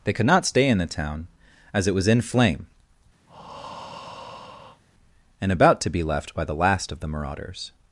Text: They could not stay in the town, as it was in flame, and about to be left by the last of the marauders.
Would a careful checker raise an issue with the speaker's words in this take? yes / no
no